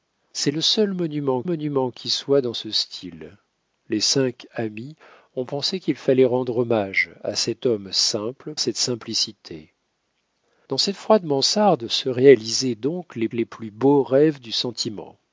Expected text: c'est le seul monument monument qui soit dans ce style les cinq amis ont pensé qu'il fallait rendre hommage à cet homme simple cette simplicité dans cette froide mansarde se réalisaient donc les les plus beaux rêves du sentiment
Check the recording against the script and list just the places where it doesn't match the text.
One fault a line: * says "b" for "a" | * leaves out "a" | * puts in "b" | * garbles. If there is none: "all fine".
all fine